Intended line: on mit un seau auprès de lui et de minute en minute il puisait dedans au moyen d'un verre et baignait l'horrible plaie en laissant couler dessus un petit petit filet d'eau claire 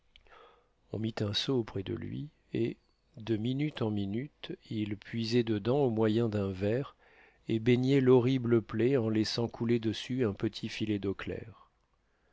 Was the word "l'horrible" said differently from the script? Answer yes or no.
no